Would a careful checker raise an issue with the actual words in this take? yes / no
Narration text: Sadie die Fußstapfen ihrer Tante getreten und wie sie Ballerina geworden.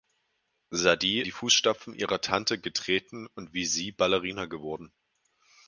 no